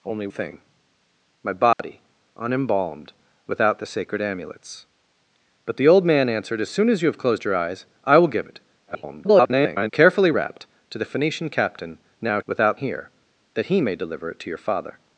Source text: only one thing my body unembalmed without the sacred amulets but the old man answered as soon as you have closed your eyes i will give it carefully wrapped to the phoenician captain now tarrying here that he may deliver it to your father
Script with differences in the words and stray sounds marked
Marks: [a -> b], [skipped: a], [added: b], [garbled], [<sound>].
only [skipped: one] thing my body [dropout] unembalmed without the sacred amulets but the old man answered as soon as you have closed your eyes i will give it [garbled] carefully wrapped to the phoenician captain now [tarrying -> without] here that he may deliver it to your father